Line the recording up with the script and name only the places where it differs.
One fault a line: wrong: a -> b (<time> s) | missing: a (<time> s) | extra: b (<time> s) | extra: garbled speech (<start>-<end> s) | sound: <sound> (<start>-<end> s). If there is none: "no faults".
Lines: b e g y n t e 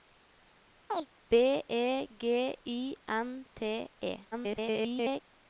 sound: chirp (0.9-1.1 s)
extra: garbled speech (4.3-5.2 s)